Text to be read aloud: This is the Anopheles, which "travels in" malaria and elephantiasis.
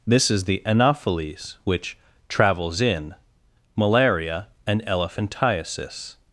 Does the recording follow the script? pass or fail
pass